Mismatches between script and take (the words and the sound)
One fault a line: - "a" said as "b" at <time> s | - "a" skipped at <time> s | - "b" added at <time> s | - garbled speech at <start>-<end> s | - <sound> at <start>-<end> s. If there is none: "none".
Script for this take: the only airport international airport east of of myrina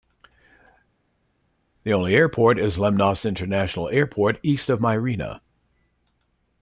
- "is lemnos" added at 2.6 s
- "of" skipped at 4.8 s